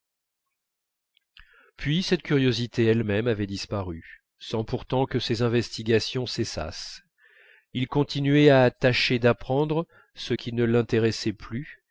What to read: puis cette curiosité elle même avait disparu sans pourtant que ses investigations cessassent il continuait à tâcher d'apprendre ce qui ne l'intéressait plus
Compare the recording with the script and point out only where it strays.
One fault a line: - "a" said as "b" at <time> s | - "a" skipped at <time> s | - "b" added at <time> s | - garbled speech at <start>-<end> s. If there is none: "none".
none